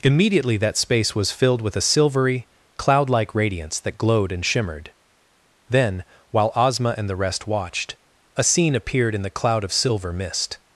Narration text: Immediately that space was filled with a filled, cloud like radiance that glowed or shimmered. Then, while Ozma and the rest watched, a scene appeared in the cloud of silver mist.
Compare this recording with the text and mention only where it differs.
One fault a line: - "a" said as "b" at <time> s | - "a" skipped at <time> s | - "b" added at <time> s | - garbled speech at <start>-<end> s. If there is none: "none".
- "filled" said as "silvery" at 1.8 s
- "or" said as "and" at 4.3 s